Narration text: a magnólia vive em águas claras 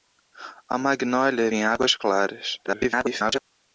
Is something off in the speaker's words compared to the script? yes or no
yes